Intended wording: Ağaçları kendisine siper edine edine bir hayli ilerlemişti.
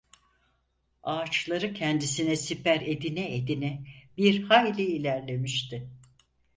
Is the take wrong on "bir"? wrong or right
right